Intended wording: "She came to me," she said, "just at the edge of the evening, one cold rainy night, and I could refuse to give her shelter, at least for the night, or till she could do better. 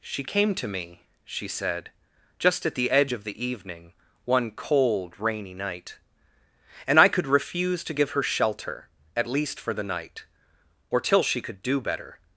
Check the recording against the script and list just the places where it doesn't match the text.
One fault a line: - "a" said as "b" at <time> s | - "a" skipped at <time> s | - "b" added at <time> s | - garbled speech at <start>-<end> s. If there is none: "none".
none